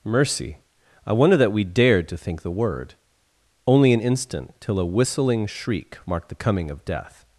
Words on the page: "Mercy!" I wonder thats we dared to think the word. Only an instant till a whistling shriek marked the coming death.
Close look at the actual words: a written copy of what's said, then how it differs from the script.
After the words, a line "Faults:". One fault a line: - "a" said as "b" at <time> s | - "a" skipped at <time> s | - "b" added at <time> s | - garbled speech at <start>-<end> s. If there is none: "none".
"Mercy!" I wonder that we dared to think the word. Only an instant till a whistling shriek marked the coming of death.
Faults:
- "thats" said as "that" at 1.4 s
- "of" added at 6.7 s